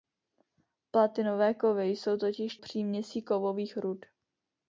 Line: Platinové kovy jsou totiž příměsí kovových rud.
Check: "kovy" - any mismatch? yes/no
no